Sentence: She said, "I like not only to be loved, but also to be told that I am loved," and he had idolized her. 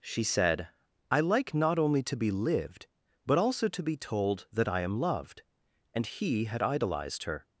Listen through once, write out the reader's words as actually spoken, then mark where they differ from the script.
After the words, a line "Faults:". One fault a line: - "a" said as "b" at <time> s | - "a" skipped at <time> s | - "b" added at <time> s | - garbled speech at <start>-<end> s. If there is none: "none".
She said, "I like not only to be lived, but also to be told that I am loved," and he had idolized her.
Faults:
- "loved" said as "lived" at 2.3 s